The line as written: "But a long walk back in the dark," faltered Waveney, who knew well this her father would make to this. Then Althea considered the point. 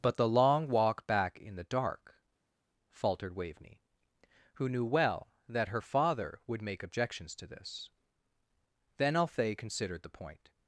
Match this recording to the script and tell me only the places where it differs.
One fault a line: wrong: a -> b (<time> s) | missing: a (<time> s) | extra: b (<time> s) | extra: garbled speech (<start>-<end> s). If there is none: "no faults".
wrong: a -> the (0.2 s)
wrong: this -> that (5.5 s)
extra: objections (6.8 s)